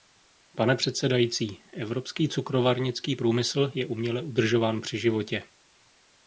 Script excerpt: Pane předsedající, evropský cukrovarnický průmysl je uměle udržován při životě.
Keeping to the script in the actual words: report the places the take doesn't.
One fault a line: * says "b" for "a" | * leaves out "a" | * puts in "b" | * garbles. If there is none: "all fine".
all fine